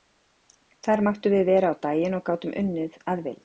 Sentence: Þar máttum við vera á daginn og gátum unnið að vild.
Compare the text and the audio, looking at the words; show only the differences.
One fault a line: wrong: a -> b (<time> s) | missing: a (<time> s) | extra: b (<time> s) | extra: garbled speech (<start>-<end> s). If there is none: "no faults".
no faults